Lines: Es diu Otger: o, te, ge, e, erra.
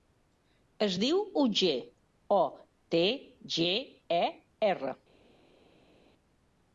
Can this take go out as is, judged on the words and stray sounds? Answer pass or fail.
pass